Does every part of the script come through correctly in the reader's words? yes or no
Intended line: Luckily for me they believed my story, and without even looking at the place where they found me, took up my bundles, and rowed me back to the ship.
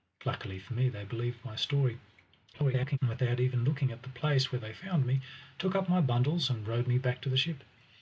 no